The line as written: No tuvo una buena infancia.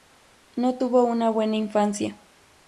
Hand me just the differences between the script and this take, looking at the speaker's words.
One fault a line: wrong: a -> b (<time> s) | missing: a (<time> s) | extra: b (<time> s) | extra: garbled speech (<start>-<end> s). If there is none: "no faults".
no faults